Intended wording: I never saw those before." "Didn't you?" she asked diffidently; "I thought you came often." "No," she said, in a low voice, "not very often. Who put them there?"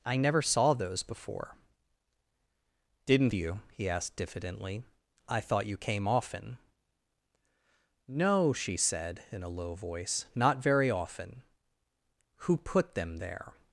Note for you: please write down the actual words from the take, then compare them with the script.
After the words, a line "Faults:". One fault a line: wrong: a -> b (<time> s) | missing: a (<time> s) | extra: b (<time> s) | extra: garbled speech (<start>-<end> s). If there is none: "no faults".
I never saw those before." "Didn't you?" he asked diffidently; "I thought you came often." "No," she said, in a low voice, "not very often. Who put them there?"
Faults:
wrong: she -> he (3.7 s)